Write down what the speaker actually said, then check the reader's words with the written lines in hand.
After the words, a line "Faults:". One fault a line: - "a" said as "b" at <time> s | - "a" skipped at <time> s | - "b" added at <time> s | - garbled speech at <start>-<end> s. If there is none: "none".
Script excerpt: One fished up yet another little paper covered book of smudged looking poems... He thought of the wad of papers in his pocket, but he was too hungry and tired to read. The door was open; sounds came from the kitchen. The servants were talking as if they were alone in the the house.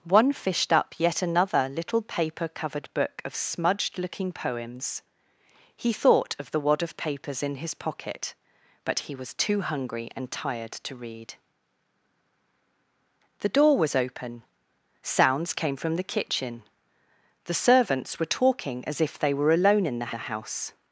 One fished up yet another little paper covered book of smudged looking poems... He thought of the wad of papers in his pocket, but he was too hungry and tired to read. The door was open; sounds came from the kitchen. The servants were talking as if they were alone in the the house.
Faults:
none